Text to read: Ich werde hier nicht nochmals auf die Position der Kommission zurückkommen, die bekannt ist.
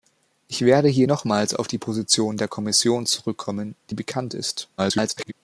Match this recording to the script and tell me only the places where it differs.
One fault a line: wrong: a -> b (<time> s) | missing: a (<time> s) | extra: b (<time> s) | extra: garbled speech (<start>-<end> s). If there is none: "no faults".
missing: nicht (1.1 s)
extra: garbled speech (4.8-5.3 s)